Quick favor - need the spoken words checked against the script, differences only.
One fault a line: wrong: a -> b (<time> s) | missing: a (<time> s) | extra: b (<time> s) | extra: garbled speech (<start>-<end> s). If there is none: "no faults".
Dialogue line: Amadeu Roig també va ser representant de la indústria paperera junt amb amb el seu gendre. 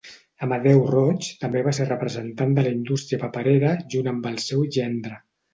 missing: amb (4.3 s)